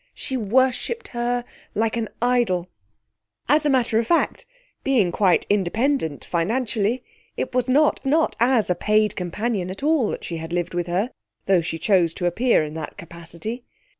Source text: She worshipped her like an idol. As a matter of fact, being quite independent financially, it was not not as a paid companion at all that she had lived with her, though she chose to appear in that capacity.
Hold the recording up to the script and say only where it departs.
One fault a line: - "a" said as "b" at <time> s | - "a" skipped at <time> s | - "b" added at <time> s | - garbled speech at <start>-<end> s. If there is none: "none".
none